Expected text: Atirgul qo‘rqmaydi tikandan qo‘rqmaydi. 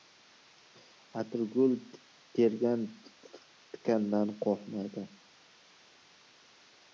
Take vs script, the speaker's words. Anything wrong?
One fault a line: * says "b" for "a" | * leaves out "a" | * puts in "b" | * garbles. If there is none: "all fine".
* says "tergan" for "qo‘rqmaydi"